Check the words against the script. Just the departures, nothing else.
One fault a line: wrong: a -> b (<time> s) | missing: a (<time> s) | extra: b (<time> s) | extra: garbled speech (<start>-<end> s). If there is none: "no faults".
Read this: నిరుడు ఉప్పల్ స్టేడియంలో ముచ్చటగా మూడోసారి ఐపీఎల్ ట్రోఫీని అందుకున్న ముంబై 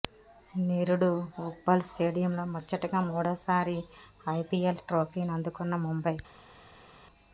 no faults